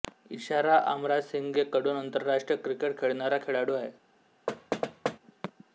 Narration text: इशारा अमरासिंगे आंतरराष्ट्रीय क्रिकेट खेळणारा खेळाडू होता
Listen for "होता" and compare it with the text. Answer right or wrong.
wrong